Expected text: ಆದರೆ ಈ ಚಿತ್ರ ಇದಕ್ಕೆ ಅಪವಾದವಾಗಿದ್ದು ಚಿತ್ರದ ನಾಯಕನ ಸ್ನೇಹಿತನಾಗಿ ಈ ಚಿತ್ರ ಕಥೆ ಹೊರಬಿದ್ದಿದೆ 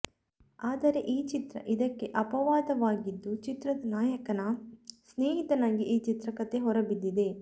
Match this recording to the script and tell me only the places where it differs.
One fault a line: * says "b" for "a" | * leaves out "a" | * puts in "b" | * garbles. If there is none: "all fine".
all fine